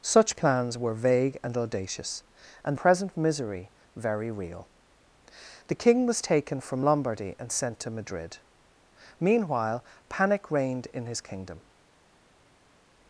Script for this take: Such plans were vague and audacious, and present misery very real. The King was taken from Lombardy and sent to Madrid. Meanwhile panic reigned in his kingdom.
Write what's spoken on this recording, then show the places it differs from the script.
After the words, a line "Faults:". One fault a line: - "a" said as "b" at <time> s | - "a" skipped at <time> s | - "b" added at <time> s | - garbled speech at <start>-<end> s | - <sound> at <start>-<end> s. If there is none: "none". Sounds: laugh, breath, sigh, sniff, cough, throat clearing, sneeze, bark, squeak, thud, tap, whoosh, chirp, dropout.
Such plans were vague and audacious, and present misery very real. The King was taken from Lombardy and sent to Madrid. Meanwhile panic reigned in his kingdom.
Faults:
none